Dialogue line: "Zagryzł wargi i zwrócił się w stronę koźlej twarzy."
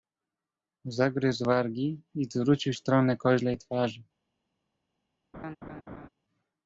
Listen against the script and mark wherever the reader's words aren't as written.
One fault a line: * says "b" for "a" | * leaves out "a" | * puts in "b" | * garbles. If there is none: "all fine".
* leaves out "się"